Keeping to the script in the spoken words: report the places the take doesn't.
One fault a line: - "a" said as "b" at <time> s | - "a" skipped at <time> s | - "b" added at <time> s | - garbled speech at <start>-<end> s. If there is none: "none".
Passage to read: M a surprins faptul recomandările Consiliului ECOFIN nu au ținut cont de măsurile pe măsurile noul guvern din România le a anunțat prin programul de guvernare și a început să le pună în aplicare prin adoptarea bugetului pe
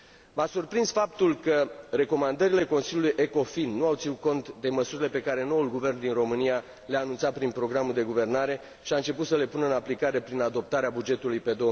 - "că" added at 1.4 s
- "măsurile" said as "care" at 5.2 s